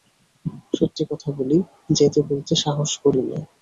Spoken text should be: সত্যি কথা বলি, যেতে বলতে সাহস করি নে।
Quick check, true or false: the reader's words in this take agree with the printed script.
true